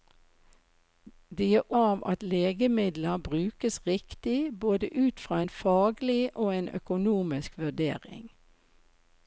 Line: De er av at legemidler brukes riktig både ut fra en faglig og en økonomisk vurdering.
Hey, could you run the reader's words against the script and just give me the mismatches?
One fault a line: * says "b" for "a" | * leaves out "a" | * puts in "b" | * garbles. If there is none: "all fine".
all fine